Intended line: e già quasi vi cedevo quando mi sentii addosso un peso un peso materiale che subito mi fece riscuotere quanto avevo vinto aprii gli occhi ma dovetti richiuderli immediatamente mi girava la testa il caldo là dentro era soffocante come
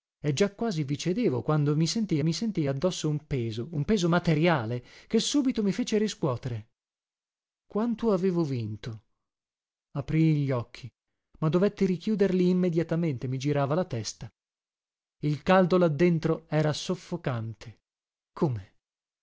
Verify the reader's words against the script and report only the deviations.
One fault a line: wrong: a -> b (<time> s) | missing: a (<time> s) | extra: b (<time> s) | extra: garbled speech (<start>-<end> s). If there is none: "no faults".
extra: mi sentii (2.2 s)